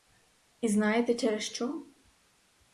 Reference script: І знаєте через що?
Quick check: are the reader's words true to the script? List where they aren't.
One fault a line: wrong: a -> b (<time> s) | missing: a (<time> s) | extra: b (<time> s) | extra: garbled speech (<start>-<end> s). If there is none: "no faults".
no faults